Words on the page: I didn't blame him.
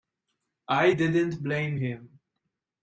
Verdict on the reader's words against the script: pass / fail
pass